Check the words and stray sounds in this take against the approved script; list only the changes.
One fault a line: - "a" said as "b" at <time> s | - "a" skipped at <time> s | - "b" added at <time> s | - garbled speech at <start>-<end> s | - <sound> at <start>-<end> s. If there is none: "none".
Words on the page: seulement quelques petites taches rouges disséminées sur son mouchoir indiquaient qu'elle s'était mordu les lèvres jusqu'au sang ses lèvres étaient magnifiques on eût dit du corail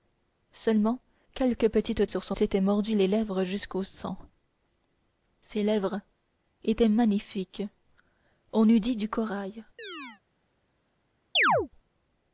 - "taches rouges disséminées" skipped at 2.1 s
- "mouchoir indiquaient qu'elle" skipped at 2.4 s
- chirp at 9.8-10.2 s
- chirp at 11.4-11.7 s